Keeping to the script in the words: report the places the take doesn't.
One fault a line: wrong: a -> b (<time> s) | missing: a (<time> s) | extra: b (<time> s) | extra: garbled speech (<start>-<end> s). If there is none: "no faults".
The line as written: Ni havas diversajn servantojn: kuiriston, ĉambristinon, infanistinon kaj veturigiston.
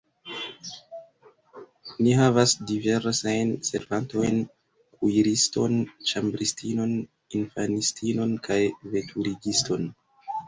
no faults